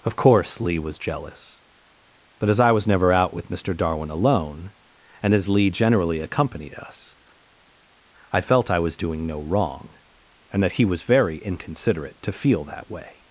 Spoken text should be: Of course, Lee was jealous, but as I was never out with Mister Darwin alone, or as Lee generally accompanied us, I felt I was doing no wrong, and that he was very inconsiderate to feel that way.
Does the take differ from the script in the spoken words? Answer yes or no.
yes